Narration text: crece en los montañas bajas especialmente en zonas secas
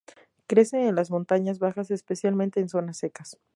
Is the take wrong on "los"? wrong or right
wrong